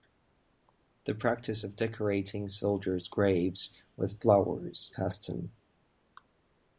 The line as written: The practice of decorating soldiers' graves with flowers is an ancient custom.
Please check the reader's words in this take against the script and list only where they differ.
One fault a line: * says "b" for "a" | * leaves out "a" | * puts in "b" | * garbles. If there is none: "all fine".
* leaves out "is an ancient"